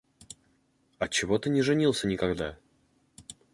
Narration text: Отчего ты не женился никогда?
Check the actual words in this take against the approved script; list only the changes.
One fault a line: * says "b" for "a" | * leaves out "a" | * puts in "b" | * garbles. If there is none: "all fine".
all fine